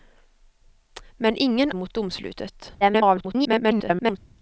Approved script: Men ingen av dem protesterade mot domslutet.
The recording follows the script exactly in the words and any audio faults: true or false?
false